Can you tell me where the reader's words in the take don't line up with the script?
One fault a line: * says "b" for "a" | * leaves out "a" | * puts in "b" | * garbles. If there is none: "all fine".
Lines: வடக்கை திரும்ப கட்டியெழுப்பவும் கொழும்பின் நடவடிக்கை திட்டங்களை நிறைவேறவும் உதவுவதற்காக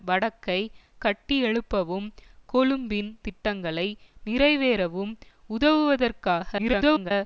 * leaves out "திரும்ப"
* leaves out "நடவடிக்கை"
* garbles